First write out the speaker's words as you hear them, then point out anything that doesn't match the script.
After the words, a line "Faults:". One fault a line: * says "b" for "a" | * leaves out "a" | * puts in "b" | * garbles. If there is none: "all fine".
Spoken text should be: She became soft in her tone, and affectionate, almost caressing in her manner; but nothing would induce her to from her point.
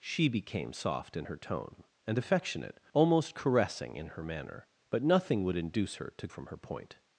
She became soft in her tone, and affectionate, almost caressing in her manner; but nothing would induce her to from her point.
Faults:
all fine